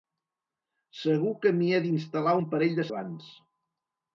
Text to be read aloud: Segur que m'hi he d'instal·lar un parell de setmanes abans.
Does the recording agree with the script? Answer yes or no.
no